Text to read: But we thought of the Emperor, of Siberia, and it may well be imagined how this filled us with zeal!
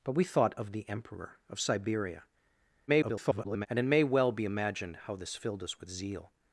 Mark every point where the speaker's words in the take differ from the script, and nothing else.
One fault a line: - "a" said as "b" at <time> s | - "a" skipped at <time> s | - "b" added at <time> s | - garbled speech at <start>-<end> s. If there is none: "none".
- garbled speech at 2.9-3.7 s